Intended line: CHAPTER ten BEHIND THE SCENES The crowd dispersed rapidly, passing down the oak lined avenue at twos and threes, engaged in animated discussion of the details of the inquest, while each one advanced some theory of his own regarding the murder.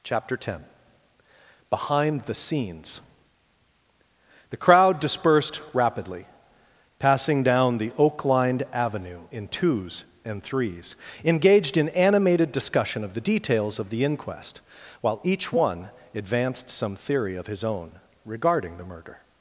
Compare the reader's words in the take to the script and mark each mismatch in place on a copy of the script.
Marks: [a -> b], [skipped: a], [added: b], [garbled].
CHAPTER ten BEHIND THE SCENES The crowd dispersed rapidly, passing down the oak lined avenue [at -> in] twos and threes, engaged in animated discussion of the details of the inquest, while each one advanced some theory of his own regarding the murder.